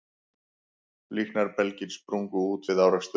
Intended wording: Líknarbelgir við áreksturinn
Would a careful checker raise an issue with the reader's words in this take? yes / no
yes